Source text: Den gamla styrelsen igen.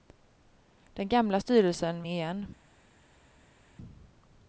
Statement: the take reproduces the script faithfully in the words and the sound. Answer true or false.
true